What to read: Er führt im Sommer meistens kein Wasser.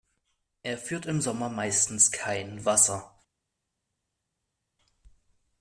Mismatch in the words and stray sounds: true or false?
false